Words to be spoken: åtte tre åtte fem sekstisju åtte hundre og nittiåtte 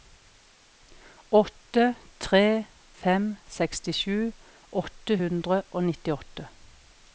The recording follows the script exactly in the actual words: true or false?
false